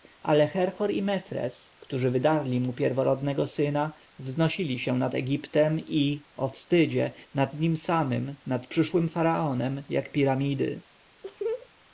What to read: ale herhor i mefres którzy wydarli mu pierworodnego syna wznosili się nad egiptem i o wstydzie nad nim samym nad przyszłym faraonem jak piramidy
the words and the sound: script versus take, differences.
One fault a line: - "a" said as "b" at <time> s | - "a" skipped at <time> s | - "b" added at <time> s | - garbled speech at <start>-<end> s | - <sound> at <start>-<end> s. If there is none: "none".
- laugh at 11.2-11.7 s